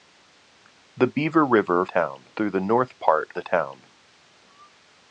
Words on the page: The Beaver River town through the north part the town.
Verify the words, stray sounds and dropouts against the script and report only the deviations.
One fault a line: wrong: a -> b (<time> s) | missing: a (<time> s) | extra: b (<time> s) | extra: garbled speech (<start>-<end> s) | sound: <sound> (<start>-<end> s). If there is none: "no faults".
no faults